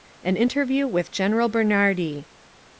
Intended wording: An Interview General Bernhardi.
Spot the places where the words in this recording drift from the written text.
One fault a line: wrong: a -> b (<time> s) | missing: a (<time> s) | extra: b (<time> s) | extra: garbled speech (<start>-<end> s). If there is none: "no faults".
extra: with (0.9 s)